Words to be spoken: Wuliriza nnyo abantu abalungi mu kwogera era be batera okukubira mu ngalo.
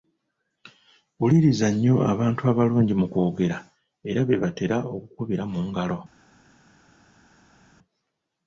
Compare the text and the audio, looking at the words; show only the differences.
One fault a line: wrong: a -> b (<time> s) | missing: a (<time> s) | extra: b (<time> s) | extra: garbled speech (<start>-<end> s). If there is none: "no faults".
no faults